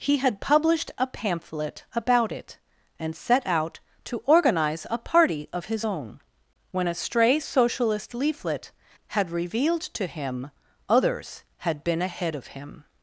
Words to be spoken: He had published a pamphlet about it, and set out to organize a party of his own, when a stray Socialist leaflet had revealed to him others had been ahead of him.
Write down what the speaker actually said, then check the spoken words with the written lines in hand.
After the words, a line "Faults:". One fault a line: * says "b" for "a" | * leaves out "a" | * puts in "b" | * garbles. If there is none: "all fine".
He had published a pamphlet about it, and set out to organize a party of his own, when a stray Socialist leaflet had revealed to him others had been ahead of him.
Faults:
all fine